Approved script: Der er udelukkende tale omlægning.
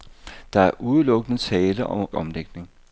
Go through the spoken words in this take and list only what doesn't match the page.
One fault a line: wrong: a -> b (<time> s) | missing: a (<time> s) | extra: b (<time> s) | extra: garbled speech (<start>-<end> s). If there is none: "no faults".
no faults